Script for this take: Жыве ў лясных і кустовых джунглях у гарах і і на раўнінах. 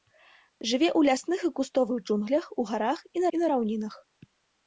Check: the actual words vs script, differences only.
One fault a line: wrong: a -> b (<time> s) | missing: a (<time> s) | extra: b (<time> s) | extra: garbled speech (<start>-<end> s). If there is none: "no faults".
no faults